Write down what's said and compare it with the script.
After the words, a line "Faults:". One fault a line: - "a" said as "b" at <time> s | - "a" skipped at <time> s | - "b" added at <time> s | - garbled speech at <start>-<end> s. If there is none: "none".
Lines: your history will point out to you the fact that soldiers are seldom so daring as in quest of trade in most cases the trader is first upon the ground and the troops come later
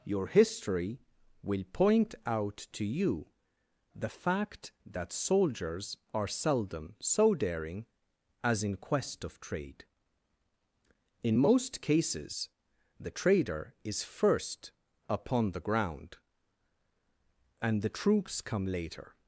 your history will point out to you the fact that soldiers are seldom so daring as in quest of trade in most cases the trader is first upon the ground and the troops come later
Faults:
none